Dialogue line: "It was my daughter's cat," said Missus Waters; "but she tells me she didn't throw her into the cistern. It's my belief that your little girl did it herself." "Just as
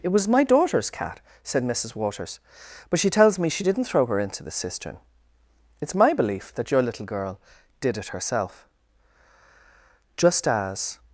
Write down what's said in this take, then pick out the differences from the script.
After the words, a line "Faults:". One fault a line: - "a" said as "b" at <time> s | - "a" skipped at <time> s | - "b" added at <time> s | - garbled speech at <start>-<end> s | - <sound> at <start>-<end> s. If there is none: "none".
"It was my daughter's cat," said Missus Waters; "but she tells me she didn't throw her into the cistern. It's my belief that your little girl did it herself." "Just as
Faults:
none